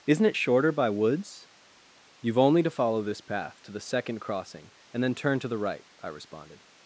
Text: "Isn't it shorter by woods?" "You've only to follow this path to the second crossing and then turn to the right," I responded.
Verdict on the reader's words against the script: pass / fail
pass